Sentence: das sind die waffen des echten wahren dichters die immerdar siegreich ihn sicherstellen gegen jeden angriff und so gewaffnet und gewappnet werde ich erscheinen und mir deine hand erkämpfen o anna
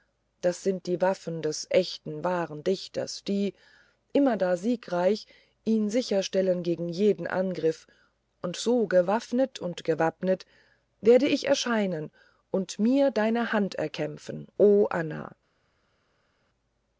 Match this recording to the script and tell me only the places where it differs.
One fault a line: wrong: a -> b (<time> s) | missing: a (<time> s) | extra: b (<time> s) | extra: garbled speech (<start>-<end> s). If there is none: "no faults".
no faults